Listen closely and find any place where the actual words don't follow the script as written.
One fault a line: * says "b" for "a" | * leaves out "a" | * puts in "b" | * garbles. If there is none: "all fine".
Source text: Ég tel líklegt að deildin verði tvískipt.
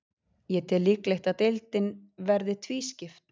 all fine